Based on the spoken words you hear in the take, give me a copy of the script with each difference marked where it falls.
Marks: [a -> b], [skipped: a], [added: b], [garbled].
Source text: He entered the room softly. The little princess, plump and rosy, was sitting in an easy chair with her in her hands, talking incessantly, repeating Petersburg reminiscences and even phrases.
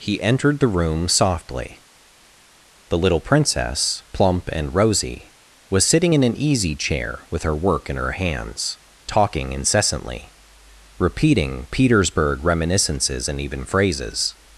He entered the room softly. The little princess, plump and rosy, was sitting in an easy chair with her [added: work] in her hands, talking incessantly, repeating Petersburg reminiscences and even phrases.